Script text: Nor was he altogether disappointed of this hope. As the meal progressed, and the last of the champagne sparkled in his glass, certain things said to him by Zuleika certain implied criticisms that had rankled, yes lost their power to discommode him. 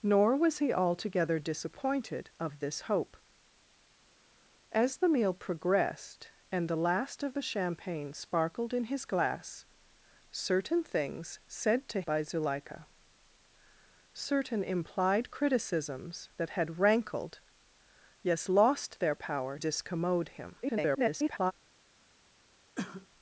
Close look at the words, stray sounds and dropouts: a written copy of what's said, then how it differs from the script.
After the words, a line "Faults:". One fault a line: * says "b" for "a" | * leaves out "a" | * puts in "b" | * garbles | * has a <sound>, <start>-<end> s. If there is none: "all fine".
Nor was he altogether disappointed of this hope. As the meal progressed, and the last of the champagne sparkled in his glass, certain things said to by Zuleika certain implied criticisms that had rankled, yes lost their power discommode him. [garbled]
Faults:
* leaves out "him"
* leaves out "to"
* garbles
* has a cough, 22.7-23.1 s